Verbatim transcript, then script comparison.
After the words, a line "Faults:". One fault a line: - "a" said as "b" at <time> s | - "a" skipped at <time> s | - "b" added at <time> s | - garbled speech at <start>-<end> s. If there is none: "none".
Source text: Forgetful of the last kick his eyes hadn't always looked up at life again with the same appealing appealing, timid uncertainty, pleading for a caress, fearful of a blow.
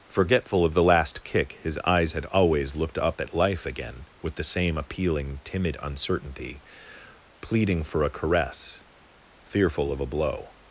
Forgetful of the last kick his eyes had always looked up at life again with the same appealing, timid uncertainty, pleading for a caress, fearful of a blow.
Faults:
- "hadn't" said as "had" at 2.1 s
- "appealing" skipped at 5.4 s